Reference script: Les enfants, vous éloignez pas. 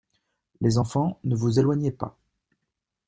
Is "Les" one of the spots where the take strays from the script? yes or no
no